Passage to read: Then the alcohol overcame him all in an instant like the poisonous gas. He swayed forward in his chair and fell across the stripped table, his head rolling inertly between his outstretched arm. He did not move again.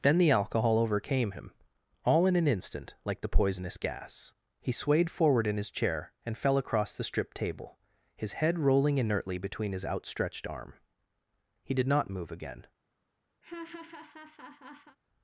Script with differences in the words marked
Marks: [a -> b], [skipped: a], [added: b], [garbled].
Then the alcohol overcame him all in an instant like the poisonous gas. He swayed forward in his chair and fell across the stripped table, his head rolling inertly between his outstretched arm. He did not move again.